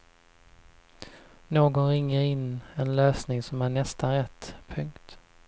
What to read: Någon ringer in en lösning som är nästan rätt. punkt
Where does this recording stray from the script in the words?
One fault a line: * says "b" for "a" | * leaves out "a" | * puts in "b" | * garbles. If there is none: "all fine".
all fine